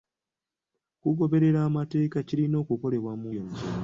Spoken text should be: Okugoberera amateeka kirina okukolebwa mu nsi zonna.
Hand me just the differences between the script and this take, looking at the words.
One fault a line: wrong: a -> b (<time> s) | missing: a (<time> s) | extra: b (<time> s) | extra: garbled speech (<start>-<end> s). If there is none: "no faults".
missing: nsi (3.3 s)